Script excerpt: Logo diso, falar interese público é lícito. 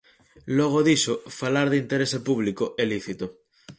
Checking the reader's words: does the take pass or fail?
fail